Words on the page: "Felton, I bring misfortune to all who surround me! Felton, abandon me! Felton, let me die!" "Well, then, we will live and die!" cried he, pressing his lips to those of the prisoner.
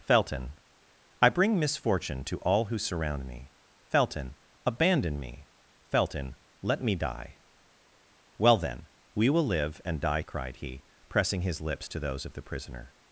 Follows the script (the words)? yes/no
yes